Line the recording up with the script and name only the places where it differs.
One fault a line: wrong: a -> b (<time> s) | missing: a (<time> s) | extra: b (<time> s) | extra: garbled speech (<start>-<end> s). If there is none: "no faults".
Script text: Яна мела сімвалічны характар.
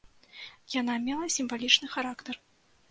no faults